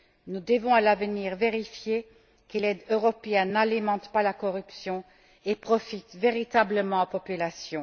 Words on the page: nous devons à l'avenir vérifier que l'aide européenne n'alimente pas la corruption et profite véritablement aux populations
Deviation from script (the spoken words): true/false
false